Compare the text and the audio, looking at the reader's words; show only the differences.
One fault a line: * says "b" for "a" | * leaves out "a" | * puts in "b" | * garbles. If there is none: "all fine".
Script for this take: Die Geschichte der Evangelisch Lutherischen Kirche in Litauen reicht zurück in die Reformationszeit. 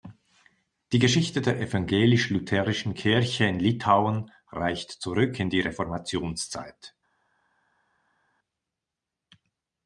all fine